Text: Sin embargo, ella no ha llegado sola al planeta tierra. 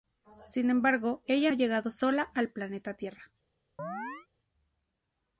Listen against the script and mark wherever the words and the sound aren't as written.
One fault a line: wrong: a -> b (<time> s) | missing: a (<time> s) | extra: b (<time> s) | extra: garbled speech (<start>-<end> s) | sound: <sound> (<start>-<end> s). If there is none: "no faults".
missing: no (1.5 s)
sound: chirp (3.8-4.3 s)